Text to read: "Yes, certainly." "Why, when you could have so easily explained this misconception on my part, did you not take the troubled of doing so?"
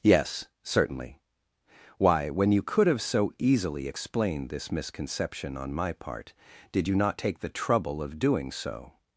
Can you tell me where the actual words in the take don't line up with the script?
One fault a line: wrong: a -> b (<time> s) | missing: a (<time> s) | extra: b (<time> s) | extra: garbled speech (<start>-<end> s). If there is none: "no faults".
wrong: troubled -> trouble (7.5 s)